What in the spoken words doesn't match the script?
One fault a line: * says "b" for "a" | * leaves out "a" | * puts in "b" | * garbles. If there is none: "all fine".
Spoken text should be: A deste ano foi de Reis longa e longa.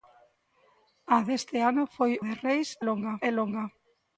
all fine